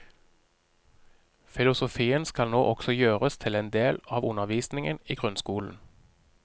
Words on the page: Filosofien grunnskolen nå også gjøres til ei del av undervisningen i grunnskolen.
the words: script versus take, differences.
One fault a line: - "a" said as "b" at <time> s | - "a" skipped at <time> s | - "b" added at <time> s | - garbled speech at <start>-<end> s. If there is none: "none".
- "grunnskolen" said as "skal" at 2.2 s
- "ei" said as "en" at 3.6 s